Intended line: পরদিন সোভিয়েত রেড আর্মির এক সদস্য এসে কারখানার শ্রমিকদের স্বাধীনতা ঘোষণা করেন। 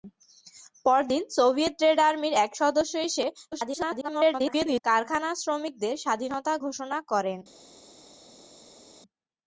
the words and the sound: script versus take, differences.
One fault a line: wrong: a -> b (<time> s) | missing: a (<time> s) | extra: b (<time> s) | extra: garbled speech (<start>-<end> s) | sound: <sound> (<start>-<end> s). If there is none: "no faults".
extra: garbled speech (3.5-4.8 s)